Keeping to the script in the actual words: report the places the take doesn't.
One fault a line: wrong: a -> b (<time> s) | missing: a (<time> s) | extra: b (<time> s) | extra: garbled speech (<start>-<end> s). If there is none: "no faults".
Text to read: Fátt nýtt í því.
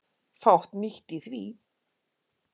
no faults